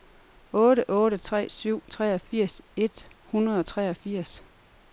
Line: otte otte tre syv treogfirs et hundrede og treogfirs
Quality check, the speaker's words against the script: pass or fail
pass